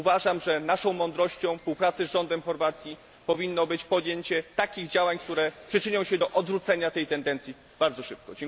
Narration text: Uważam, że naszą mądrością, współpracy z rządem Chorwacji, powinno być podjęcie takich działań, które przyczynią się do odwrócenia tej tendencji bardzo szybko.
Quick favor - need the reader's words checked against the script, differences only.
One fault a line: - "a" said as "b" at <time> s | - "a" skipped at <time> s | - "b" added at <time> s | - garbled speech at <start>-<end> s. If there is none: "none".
none